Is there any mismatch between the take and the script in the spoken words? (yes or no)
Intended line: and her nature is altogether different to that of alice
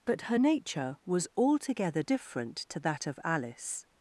yes